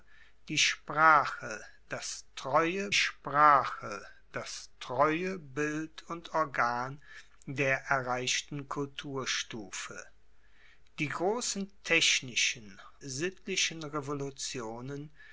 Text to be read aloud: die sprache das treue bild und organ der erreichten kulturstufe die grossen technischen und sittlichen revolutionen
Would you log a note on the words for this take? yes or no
yes